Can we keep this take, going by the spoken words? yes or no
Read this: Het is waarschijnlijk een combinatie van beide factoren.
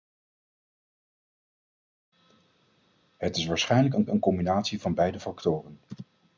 no